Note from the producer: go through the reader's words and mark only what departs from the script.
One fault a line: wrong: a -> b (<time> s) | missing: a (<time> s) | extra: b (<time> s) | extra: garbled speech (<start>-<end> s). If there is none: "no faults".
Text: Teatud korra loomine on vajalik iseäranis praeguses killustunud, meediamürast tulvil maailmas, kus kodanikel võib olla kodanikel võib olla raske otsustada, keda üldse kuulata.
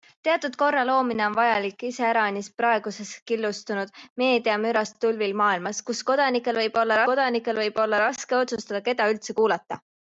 no faults